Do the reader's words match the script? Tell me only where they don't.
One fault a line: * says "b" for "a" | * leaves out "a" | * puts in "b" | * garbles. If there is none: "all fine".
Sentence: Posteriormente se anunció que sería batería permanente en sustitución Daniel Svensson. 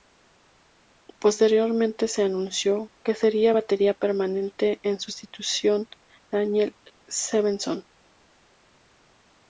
all fine